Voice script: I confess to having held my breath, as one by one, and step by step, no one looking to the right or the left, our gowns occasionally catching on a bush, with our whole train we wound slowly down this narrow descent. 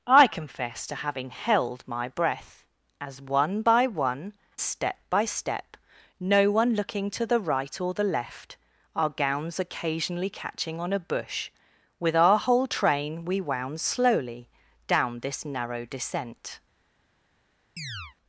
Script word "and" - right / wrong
wrong